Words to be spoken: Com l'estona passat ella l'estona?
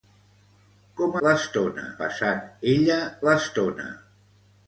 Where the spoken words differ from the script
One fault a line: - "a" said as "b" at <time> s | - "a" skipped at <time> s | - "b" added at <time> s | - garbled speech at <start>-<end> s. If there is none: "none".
none